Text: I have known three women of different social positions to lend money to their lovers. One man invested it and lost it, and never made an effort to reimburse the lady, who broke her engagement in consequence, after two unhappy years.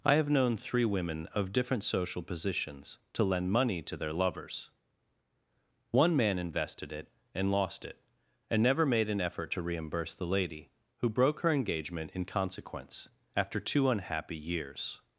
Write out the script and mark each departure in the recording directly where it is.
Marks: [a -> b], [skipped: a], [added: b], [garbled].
I have known three women of different social positions to lend money to their lovers. One man invested it and lost it, and never made an effort to reimburse the lady, who broke her engagement in consequence, after two unhappy years.